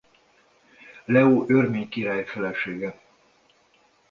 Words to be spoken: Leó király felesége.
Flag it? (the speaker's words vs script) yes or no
yes